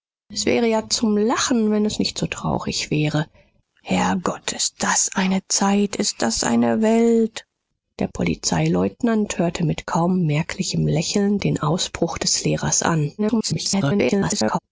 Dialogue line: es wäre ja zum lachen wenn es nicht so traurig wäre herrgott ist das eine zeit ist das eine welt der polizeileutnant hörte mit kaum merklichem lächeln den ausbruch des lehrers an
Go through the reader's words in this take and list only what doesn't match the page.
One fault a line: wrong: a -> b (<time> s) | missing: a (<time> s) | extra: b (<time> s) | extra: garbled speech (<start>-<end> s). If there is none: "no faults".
extra: garbled speech (13.2-14.6 s)